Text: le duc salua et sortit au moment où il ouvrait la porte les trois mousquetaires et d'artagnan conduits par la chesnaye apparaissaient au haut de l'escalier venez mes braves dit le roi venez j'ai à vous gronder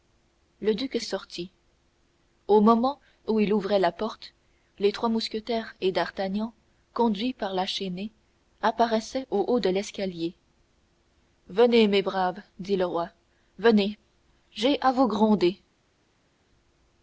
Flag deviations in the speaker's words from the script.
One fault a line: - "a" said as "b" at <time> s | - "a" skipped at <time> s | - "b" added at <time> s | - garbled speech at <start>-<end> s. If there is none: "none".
- "salua et" skipped at 1.0 s